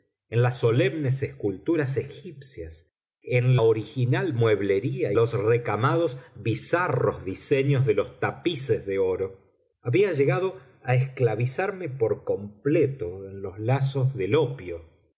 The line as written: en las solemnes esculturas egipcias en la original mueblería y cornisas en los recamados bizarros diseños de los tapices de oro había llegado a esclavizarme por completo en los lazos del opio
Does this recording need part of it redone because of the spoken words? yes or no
yes